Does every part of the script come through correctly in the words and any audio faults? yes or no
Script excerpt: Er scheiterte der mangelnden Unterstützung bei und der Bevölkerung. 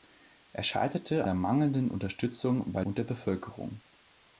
yes